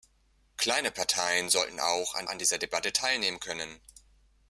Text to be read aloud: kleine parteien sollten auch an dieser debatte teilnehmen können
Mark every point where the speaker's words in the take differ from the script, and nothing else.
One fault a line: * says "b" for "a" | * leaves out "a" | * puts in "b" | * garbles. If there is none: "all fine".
* puts in "an"